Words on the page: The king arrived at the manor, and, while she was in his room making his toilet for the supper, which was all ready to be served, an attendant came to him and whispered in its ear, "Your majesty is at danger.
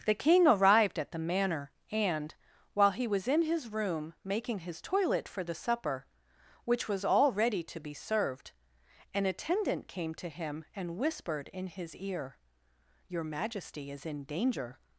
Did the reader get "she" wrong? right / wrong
wrong